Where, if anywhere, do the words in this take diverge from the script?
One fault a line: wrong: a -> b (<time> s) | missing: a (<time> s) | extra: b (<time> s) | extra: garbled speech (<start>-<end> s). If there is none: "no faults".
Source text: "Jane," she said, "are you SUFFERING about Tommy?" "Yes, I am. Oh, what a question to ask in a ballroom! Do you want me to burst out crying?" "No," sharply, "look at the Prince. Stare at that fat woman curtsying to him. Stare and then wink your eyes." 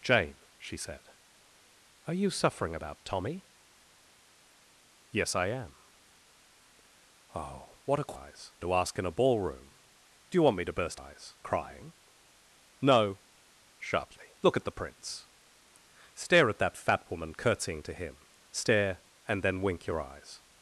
wrong: question -> eyes (8.1 s)
wrong: out -> eyes (10.9 s)